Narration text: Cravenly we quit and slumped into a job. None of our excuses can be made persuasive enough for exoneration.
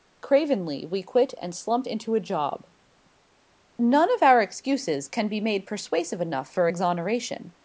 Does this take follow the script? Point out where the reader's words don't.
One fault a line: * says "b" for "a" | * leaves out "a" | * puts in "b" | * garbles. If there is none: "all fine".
all fine